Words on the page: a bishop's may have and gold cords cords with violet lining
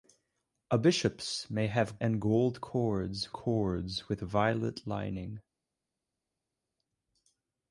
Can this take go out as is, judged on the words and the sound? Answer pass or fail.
pass